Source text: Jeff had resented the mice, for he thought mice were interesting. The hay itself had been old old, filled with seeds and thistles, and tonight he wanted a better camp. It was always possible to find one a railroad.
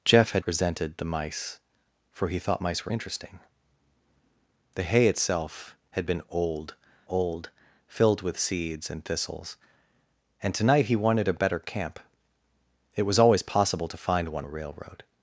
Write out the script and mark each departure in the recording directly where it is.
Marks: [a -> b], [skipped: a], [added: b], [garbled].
Jeff had resented the mice, for he thought mice were interesting. The hay itself had been old old, filled with seeds and thistles, and tonight he wanted a better camp. It was always possible to find one a railroad.